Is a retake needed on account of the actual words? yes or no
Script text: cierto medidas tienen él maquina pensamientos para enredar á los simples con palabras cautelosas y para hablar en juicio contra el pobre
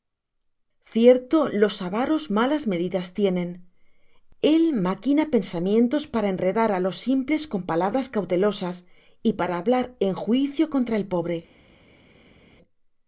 yes